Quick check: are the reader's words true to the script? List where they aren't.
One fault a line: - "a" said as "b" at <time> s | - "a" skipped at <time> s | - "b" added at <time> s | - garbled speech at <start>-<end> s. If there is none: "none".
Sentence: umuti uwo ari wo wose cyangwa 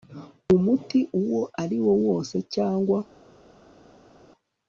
none